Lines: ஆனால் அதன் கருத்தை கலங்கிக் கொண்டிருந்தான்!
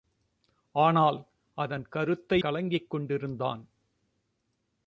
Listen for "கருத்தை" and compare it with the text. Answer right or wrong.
right